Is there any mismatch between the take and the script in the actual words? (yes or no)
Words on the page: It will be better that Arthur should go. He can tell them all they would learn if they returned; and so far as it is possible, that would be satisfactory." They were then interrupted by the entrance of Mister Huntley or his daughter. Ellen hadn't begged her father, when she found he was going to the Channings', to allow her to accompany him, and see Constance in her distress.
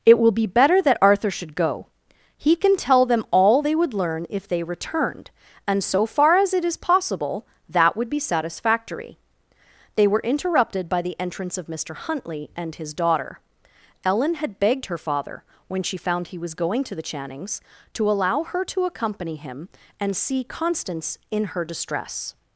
yes